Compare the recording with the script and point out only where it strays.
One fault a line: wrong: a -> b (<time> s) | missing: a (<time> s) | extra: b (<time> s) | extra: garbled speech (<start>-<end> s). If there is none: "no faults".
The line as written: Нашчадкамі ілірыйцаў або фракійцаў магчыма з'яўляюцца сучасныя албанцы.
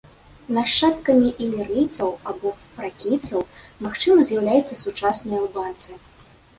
no faults